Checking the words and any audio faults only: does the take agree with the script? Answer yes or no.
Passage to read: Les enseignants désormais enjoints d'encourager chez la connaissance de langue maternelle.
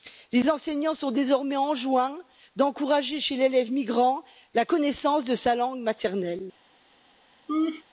no